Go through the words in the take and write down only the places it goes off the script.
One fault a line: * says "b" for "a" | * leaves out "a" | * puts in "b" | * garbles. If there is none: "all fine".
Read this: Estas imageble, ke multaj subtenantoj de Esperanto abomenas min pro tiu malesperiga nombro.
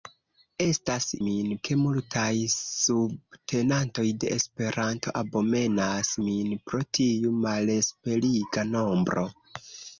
* says "min" for "imageble"